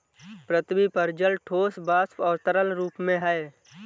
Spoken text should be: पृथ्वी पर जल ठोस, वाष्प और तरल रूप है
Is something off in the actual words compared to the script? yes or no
yes